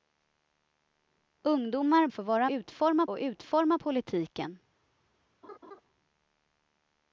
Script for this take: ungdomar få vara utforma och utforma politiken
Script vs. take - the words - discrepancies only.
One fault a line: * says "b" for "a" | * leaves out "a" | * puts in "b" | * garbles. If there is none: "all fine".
all fine